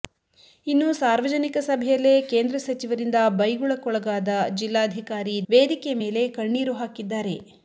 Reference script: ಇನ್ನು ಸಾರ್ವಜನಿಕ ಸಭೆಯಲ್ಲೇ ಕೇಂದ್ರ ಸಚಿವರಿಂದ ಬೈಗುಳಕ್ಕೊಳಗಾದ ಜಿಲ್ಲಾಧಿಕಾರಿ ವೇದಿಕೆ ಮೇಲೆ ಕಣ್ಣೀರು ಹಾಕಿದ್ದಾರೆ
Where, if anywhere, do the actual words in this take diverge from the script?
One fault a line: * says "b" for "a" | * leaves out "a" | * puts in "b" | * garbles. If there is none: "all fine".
all fine